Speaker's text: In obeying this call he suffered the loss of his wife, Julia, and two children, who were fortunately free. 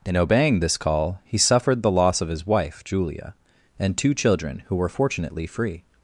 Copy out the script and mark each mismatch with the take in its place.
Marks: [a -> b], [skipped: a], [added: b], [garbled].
In obeying this call he suffered the loss of his wife, Julia, and two children, who were fortunately free.